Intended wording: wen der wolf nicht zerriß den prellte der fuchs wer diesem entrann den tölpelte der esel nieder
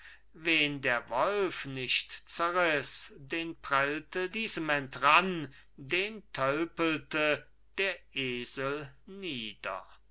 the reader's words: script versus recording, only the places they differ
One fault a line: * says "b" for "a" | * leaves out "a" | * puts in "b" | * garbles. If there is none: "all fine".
* leaves out "der fuchs wer"